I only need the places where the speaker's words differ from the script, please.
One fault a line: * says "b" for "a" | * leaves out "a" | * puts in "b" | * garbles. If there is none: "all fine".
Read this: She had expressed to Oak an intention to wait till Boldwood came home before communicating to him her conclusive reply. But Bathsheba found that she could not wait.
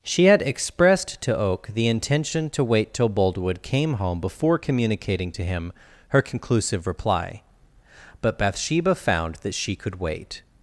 * says "the" for "an"
* leaves out "not"